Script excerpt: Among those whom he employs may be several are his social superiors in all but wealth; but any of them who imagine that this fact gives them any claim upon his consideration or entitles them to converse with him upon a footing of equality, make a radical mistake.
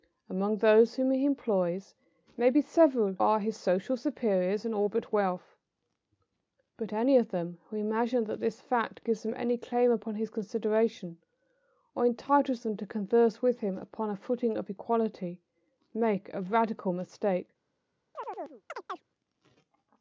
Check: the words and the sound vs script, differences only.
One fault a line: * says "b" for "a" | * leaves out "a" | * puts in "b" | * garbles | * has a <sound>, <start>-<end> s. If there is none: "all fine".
* has a chirp, 18.1-19.0 s